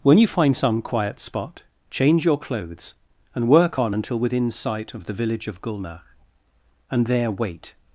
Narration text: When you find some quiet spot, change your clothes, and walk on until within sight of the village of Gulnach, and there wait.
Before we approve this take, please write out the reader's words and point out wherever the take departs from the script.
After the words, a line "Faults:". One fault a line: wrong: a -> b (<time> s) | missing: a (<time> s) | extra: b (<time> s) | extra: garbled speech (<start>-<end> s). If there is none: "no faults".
When you find some quiet spot, change your clothes, and work on until within sight of the village of Gulnach, and there wait.
Faults:
wrong: walk -> work (3.5 s)